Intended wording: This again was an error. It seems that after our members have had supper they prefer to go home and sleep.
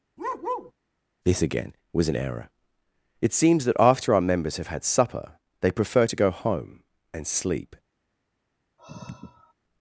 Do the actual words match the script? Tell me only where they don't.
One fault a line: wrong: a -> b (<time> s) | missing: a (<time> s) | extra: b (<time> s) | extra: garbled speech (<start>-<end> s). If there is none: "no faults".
no faults